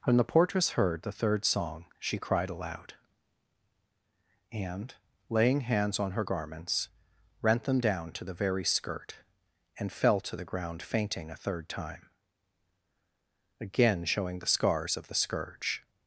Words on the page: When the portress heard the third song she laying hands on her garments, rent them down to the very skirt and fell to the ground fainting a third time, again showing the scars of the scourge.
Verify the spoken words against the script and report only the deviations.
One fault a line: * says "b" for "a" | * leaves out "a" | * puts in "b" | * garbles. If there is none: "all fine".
* puts in "cried aloud and"